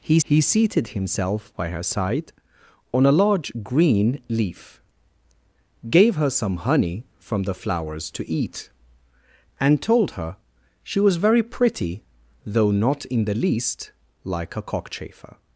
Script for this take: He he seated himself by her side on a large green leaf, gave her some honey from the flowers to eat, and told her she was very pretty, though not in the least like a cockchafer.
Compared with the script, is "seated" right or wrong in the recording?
right